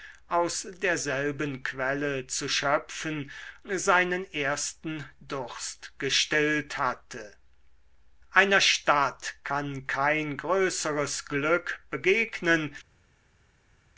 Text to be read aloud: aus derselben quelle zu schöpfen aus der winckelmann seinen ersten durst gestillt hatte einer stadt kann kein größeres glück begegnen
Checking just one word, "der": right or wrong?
wrong